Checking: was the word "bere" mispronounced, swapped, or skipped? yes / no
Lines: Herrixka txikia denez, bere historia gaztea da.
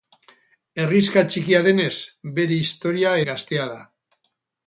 no